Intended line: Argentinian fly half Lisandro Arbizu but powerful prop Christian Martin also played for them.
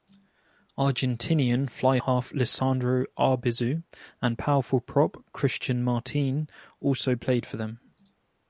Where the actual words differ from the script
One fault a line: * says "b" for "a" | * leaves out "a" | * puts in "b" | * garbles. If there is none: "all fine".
* says "and" for "but"